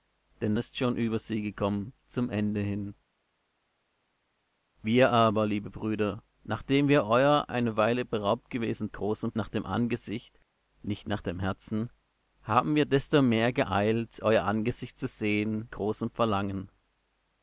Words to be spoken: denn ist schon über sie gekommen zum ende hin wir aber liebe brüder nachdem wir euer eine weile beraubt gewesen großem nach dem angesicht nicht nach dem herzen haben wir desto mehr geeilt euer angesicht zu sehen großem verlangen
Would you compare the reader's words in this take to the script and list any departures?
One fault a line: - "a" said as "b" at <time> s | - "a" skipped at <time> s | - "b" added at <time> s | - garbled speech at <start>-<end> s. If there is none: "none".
none